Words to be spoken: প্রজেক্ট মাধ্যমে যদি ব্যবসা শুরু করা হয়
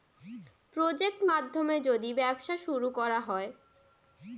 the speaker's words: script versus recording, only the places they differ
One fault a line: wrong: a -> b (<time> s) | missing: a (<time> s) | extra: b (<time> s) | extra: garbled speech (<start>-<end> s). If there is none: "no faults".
no faults